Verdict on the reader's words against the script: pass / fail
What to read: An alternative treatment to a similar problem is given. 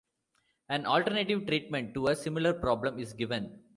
pass